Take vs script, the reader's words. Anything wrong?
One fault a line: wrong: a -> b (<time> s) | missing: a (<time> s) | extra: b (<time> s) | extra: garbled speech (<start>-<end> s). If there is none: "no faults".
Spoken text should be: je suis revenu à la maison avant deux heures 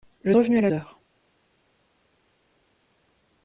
missing: suis (0.3 s)
missing: maison avant deux (0.7 s)